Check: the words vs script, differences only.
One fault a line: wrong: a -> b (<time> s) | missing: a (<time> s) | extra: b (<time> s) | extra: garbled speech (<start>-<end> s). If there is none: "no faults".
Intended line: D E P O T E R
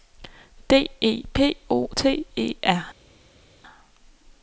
no faults